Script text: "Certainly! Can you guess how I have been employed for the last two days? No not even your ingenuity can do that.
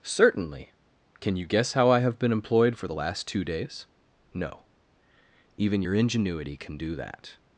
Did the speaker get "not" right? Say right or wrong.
wrong